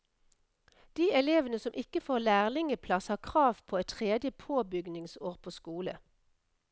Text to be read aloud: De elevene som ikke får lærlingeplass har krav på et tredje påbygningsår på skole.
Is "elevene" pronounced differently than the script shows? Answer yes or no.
no